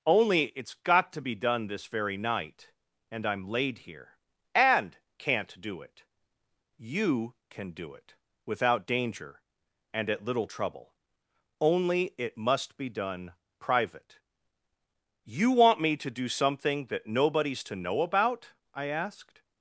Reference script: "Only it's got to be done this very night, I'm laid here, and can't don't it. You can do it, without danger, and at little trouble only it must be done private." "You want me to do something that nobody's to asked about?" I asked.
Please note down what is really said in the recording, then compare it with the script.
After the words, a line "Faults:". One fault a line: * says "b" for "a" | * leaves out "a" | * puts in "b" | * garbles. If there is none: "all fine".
"Only it's got to be done this very night, and I'm laid here, and can't do it. You can do it, without danger, and at little trouble only it must be done private." "You want me to do something that nobody's to know about?" I asked.
Faults:
* puts in "and"
* says "do" for "don't"
* says "know" for "asked"